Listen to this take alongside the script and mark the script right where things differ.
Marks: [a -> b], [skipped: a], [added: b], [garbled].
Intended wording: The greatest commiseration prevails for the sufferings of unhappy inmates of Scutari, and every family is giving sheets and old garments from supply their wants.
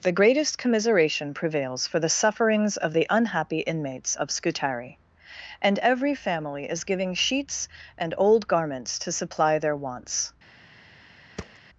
The greatest commiseration prevails for the sufferings of [added: the] unhappy inmates of Scutari, and every family is giving sheets and old garments [from -> to] supply their wants.